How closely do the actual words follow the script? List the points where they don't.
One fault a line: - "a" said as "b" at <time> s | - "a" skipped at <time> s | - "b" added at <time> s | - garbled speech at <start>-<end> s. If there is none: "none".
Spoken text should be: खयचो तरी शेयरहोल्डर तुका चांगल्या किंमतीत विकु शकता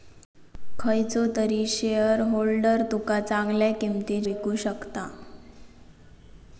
none